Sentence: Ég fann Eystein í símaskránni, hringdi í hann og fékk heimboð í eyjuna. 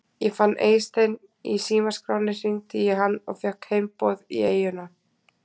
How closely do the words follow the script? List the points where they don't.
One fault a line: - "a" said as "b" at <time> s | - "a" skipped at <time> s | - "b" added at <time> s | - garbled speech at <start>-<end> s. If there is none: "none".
none